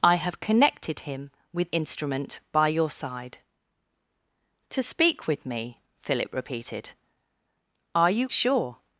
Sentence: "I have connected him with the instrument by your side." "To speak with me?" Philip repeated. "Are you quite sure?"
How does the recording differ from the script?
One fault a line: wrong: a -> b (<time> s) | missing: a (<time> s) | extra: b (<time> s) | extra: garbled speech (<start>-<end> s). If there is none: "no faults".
missing: the (1.7 s)
missing: quite (8.3 s)